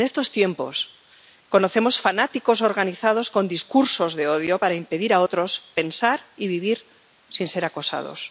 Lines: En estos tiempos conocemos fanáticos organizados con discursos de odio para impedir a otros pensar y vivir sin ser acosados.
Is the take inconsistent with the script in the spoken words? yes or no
no